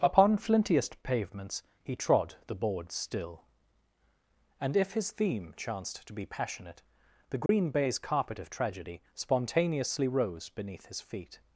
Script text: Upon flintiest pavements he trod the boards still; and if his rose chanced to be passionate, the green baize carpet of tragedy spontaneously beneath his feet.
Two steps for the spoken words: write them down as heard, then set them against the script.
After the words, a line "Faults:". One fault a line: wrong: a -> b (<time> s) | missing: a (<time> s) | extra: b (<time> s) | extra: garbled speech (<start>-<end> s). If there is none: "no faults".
Upon flintiest pavements he trod the boards still; and if his theme chanced to be passionate, the green baize carpet of tragedy spontaneously rose beneath his feet.
Faults:
wrong: rose -> theme (5.1 s)
extra: rose (10.1 s)